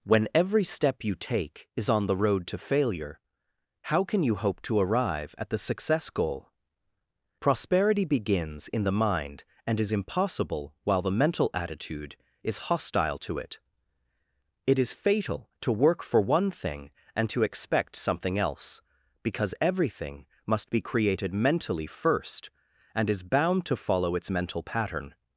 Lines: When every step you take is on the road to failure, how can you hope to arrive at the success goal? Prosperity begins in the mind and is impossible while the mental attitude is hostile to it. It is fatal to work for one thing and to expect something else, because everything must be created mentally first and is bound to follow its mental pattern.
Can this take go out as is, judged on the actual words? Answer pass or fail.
pass